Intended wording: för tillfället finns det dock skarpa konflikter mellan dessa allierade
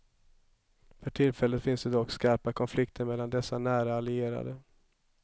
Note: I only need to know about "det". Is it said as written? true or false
true